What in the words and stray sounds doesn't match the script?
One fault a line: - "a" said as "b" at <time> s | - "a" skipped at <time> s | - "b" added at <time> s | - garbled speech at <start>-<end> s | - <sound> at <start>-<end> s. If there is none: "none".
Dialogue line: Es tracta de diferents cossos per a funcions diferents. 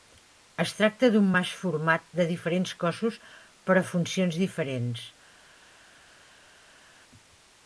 - "d'un mas format" added at 1.1 s